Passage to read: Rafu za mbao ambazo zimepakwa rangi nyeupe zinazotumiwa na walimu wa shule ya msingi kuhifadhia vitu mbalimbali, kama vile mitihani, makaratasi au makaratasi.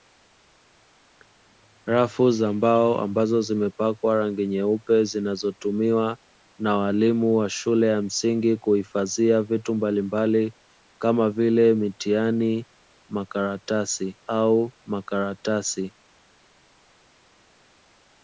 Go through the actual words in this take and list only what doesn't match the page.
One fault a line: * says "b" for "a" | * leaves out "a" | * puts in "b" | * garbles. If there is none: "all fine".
all fine